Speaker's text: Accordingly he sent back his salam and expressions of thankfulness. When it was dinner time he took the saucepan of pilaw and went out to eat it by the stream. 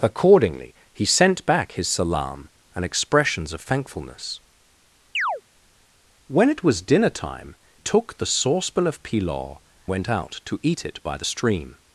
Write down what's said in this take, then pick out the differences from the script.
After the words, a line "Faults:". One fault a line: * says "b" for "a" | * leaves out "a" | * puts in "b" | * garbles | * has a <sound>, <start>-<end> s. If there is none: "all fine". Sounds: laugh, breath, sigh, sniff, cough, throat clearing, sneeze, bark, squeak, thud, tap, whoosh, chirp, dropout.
Accordingly he sent back his salam and expressions of thankfulness. When it was dinner time took the saucepan of pilaw went out to eat it by the stream.
Faults:
* has a chirp, 5.1-5.4 s
* leaves out "he"
* leaves out "and"